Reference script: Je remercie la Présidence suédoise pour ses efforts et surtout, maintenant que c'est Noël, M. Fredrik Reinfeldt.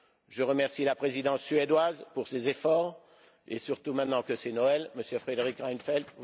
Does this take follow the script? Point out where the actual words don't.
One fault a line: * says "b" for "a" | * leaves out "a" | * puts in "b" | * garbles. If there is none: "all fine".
all fine